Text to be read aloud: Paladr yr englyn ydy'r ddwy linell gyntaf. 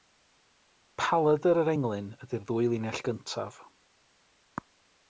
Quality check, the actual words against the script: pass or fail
pass